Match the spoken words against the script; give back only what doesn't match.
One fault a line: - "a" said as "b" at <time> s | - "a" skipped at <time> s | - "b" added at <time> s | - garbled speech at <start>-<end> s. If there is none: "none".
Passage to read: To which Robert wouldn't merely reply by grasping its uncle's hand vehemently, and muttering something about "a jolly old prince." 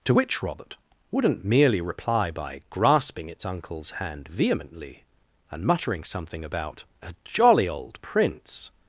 none